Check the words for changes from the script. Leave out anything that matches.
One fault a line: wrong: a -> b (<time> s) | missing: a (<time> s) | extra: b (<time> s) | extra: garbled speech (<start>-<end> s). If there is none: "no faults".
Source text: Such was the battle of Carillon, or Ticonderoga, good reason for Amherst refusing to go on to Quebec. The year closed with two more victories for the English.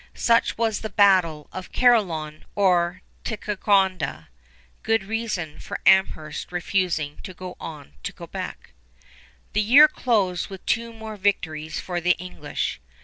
no faults